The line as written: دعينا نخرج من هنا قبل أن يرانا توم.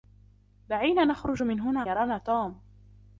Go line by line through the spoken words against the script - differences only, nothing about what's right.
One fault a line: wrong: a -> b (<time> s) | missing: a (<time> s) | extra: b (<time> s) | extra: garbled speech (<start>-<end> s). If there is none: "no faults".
missing: قبل أن (1.8 s)